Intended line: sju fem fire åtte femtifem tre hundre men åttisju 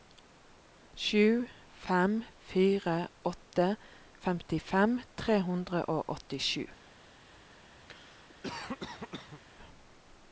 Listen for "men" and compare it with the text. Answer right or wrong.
wrong